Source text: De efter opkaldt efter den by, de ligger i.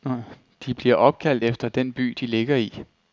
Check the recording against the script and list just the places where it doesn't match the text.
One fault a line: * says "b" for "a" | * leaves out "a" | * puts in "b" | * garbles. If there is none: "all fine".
* says "bliver" for "efter"